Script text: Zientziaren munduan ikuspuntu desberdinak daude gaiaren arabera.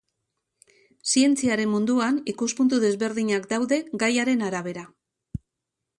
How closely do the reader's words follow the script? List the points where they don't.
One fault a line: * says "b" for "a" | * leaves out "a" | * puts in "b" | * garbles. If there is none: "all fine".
all fine